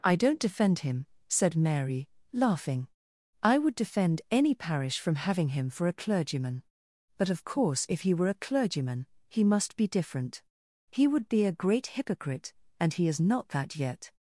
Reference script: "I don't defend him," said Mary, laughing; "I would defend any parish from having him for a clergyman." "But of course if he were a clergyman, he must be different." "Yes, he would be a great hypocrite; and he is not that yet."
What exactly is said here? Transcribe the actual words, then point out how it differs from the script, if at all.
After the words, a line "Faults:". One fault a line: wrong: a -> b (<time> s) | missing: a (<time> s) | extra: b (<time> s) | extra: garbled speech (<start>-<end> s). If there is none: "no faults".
"I don't defend him," said Mary, laughing; "I would defend any parish from having him for a clergyman." "But of course if he were a clergyman, he must be different." "He would be a great hypocrite; and he is not that yet."
Faults:
missing: Yes (10.4 s)